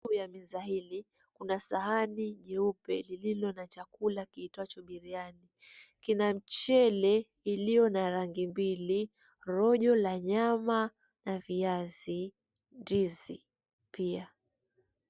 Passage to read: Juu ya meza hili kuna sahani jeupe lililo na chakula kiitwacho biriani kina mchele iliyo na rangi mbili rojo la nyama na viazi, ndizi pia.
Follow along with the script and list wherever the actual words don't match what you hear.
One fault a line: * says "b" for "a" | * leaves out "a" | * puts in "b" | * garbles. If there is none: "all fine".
all fine